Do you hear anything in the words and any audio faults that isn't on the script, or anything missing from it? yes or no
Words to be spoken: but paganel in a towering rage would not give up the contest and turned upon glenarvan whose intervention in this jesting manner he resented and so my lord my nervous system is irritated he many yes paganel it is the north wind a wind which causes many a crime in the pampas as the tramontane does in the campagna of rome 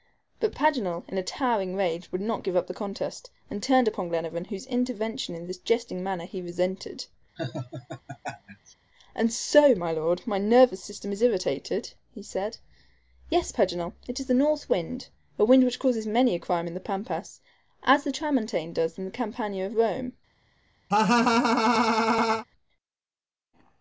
yes